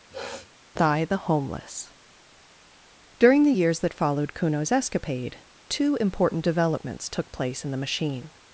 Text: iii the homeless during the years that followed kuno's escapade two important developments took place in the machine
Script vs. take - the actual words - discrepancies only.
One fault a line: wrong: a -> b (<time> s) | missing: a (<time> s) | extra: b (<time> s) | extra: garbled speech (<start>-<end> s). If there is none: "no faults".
wrong: iii -> thigh (0.8 s)